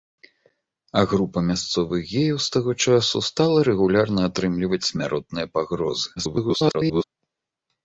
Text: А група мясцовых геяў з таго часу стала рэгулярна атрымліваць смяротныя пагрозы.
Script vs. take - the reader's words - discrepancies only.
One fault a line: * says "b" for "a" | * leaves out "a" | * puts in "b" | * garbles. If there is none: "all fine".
* garbles